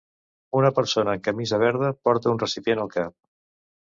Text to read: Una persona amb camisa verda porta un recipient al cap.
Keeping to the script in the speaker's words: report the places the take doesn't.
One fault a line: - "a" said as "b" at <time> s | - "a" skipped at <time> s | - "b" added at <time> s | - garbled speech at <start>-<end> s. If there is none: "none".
none